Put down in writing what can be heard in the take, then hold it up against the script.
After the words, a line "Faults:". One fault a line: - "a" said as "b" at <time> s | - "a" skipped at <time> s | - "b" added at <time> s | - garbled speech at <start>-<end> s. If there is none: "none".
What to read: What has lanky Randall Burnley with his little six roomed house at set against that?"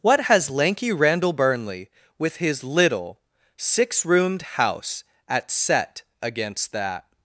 What has lanky Randall Burnley with his little six roomed house at set against that?"
Faults:
none